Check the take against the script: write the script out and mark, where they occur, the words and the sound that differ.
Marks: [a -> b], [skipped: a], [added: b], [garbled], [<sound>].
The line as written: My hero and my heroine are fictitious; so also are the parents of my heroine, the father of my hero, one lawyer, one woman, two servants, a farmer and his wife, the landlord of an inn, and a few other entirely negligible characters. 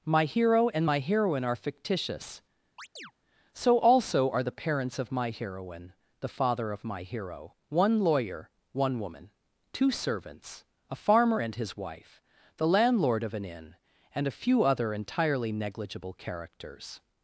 My hero and my heroine are fictitious; [chirp] so also are the parents of my heroine, the father of my hero, one lawyer, one woman, two servants, a farmer and his wife, the landlord of an inn, and a few other entirely negligible characters.